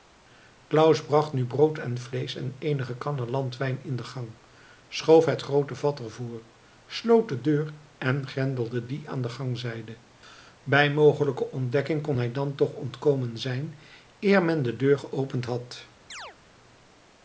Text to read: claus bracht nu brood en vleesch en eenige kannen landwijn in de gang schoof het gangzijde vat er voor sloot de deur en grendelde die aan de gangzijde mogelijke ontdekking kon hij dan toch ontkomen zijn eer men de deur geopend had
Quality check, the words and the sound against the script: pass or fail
fail